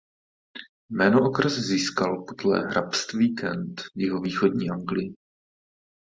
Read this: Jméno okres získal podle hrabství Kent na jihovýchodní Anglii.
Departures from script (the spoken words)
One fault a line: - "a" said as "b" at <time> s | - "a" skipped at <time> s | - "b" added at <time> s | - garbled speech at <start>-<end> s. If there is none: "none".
- "na" said as "v" at 3.8 s